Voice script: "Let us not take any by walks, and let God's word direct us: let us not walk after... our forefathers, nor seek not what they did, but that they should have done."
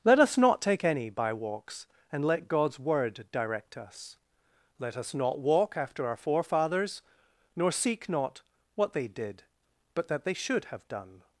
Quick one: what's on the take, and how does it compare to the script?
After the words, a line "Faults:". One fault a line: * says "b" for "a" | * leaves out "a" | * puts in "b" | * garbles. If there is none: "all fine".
"Let us not take any by walks, and let God's word direct us: let us not walk after... our forefathers, nor seek not what they did, but that they should have done."
Faults:
all fine